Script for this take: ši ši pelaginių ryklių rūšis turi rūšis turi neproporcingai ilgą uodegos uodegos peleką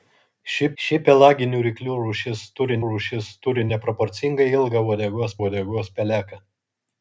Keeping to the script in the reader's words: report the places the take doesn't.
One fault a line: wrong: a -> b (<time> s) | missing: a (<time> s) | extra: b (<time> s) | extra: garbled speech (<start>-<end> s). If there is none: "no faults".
no faults